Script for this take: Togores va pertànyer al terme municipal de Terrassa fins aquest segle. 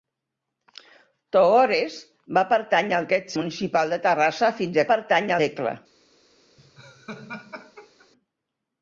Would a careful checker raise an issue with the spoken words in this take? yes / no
yes